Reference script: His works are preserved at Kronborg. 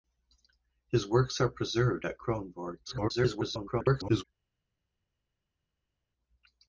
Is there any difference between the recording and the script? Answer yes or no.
yes